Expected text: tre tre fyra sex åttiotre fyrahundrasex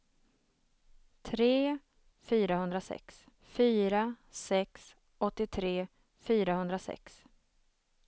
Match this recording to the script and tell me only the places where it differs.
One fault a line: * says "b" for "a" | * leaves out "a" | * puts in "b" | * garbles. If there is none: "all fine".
* says "fyrahundrasex" for "tre"